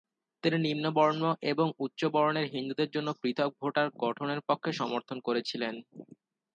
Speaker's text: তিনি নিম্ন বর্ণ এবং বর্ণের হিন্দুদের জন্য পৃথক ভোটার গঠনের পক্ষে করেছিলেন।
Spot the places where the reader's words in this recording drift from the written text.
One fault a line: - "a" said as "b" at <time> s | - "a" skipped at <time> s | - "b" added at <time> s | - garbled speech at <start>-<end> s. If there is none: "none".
- "উচ্চ" added at 1.8 s
- "সমর্থন" added at 4.8 s